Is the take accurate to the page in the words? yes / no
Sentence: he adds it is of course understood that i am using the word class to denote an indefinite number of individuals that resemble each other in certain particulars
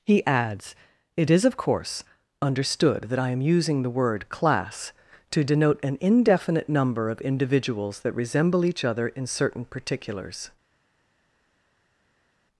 yes